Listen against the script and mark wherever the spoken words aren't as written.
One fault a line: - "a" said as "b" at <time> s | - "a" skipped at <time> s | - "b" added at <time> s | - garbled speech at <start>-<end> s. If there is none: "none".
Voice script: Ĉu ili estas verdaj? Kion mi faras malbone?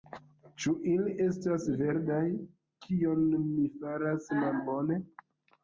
none